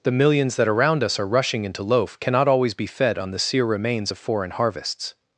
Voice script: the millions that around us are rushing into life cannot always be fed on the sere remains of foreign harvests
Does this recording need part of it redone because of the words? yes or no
yes